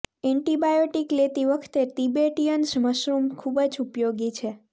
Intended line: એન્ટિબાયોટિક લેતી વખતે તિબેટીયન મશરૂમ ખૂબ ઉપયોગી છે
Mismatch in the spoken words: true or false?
true